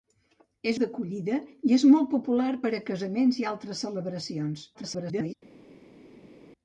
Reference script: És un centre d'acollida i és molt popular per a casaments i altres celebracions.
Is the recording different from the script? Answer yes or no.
yes